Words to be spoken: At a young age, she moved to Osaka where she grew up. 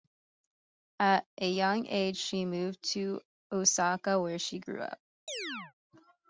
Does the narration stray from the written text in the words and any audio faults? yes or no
yes